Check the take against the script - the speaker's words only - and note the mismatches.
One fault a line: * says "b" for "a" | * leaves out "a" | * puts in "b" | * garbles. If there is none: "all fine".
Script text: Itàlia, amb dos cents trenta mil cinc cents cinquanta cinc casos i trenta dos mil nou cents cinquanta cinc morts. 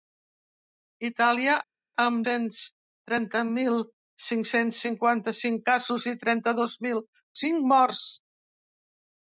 * leaves out "dos"
* leaves out "nou cents cinquanta"